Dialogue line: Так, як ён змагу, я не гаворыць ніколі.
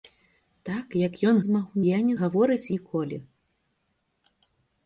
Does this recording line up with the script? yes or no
yes